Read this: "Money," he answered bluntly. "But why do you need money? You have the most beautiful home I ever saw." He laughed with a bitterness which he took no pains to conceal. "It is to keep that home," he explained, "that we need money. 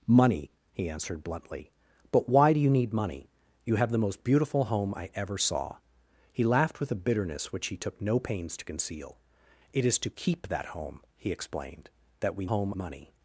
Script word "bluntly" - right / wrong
right